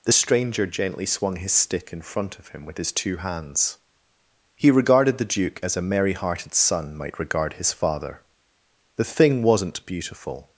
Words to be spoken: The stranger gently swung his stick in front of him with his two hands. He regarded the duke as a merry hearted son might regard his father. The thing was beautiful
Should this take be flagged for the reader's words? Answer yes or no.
yes